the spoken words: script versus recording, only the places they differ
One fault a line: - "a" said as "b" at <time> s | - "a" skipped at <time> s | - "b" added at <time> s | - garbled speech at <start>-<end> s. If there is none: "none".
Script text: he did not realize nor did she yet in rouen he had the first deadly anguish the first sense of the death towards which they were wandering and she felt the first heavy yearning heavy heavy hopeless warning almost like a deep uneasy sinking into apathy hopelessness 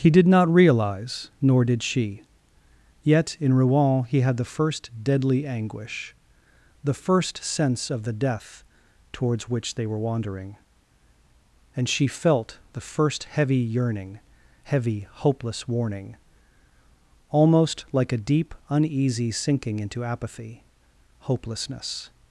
- "heavy" skipped at 15.1 s